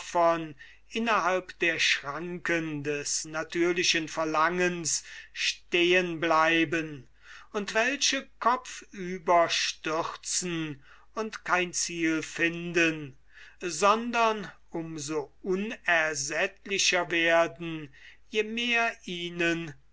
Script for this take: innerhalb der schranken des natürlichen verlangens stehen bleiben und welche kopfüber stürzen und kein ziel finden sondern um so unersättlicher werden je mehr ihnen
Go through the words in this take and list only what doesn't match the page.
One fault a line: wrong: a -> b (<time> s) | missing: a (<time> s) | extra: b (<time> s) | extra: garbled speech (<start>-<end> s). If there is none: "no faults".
no faults